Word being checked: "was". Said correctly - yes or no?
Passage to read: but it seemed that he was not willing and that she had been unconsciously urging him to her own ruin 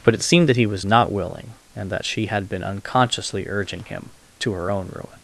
yes